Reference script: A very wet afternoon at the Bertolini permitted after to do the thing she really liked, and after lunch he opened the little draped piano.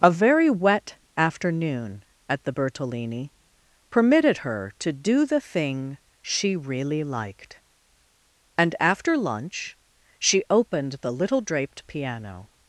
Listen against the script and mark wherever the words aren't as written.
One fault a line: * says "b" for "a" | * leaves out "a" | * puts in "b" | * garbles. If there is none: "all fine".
* says "her" for "after"
* says "she" for "he"